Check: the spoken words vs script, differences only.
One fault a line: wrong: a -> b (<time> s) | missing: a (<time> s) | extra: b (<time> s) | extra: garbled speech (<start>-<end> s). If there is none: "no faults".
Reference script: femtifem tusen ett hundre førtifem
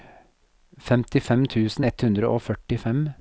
extra: og (2.3 s)